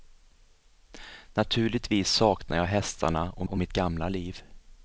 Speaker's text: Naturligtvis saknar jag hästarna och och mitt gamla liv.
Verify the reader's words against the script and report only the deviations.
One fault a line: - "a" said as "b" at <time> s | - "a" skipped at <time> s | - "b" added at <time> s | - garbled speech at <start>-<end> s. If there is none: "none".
none